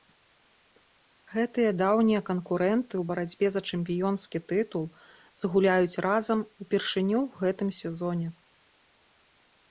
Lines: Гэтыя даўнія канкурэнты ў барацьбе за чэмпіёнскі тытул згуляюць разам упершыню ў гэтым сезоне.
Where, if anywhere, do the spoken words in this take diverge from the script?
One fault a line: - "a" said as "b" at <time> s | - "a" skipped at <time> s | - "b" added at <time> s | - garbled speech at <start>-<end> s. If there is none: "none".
none